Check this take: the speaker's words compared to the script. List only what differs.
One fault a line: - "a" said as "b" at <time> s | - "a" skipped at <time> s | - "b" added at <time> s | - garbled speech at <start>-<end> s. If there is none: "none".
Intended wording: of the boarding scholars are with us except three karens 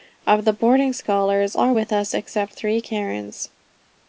none